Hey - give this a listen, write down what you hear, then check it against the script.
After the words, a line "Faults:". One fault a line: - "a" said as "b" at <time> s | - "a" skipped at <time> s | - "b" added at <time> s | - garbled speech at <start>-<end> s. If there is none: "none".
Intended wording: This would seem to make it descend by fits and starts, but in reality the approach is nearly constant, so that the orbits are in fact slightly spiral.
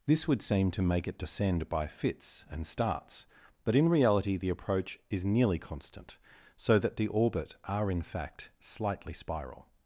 This would seem to make it descend by fits and starts, but in reality the approach is nearly constant, so that the orbit are in fact slightly spiral.
Faults:
- "orbits" said as "orbit" at 7.1 s